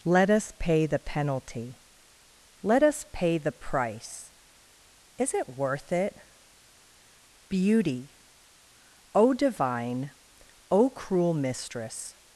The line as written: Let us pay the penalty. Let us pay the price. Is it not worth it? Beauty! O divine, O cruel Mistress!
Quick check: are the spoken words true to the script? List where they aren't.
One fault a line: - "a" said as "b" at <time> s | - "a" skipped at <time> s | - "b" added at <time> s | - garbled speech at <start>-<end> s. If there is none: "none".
- "not" skipped at 5.5 s